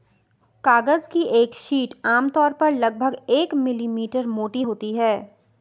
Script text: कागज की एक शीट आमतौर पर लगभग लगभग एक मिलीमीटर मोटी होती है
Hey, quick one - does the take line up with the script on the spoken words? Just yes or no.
no